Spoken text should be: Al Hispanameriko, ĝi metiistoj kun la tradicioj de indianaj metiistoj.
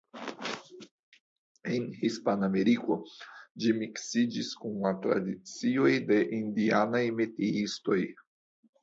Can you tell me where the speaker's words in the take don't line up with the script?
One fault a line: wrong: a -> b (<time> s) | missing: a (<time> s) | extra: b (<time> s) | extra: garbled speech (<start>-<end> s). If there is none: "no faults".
wrong: Al -> En (1.7 s)
wrong: metiistoj -> miksiĝis (3.8 s)